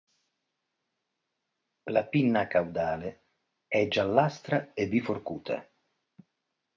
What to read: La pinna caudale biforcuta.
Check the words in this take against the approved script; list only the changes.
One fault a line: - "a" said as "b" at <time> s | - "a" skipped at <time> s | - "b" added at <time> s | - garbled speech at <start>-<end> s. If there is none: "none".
- "è giallastra e" added at 3.7 s